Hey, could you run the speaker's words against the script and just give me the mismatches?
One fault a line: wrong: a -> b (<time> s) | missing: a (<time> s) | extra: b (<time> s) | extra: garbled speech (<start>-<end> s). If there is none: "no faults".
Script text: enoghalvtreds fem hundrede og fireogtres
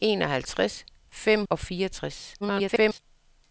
missing: hundrede (1.4 s)
extra: garbled speech (2.4-3.0 s)